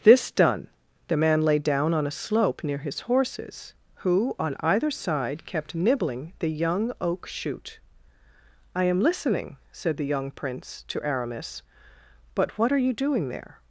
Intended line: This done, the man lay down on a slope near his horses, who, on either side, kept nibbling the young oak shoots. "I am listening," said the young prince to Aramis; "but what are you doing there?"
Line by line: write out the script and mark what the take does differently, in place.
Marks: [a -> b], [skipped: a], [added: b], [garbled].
This done, the man lay down on a slope near his horses, who, on either side, kept nibbling the young oak [shoots. -> shoot] "I am listening," said the young prince to Aramis; "but what are you doing there?"